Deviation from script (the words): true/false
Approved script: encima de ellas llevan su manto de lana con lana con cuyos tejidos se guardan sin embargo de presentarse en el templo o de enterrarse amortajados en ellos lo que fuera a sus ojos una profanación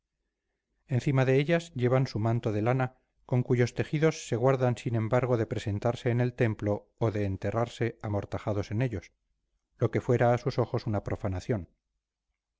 true